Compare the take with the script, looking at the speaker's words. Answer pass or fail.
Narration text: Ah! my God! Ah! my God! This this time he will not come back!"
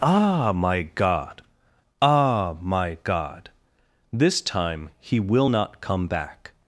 fail